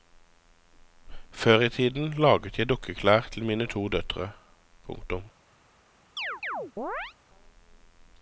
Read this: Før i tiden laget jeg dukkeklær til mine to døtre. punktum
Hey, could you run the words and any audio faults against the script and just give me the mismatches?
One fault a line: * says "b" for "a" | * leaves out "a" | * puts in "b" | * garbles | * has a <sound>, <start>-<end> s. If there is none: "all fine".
* has a chirp, 6.2-7.1 s